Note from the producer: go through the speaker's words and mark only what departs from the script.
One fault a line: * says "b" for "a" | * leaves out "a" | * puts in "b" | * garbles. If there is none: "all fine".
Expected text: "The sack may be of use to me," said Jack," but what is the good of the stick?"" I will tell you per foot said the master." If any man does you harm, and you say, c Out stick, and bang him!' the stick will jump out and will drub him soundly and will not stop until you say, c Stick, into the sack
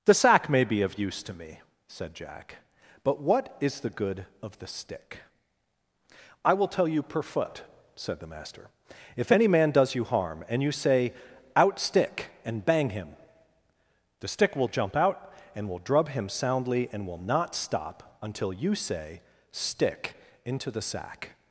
* leaves out "c"
* leaves out "c"